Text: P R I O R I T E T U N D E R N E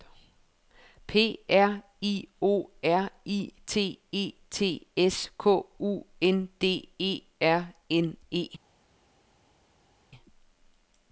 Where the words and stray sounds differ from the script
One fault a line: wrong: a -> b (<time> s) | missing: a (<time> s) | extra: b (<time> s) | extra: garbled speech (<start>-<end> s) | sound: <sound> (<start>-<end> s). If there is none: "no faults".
extra: S K (5.0 s)